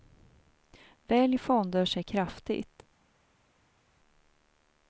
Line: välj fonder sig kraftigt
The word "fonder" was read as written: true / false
true